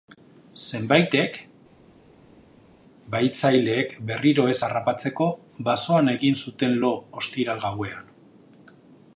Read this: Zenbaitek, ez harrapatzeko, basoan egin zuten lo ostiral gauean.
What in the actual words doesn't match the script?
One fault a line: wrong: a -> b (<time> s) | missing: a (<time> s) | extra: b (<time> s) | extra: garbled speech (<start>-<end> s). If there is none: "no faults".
extra: bahitzaileek berriro (3.1 s)